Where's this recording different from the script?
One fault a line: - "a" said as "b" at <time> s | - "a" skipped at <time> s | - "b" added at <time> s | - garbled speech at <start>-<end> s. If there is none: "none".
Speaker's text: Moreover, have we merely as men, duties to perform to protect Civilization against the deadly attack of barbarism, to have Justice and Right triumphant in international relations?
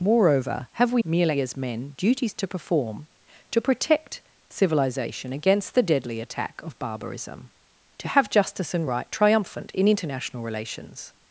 none